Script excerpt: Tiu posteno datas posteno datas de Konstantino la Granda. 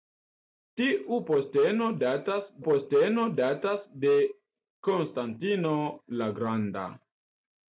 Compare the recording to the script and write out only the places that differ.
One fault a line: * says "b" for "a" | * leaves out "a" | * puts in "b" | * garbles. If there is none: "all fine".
all fine